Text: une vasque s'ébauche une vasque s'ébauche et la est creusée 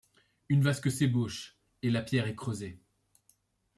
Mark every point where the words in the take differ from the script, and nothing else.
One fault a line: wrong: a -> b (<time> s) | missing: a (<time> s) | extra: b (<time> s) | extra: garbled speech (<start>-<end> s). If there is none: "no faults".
missing: une vasque s'ébauche (1.6 s)
extra: pierre (2.0 s)